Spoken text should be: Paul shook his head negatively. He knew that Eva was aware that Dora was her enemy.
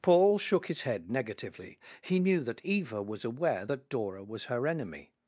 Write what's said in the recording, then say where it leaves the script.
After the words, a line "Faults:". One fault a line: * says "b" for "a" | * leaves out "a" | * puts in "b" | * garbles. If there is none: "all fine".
Paul shook his head negatively. He knew that Eva was aware that Dora was her enemy.
Faults:
all fine